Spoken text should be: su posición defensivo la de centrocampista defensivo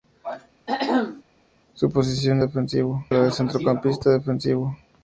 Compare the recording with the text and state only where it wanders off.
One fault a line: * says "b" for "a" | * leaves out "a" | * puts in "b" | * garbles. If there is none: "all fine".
all fine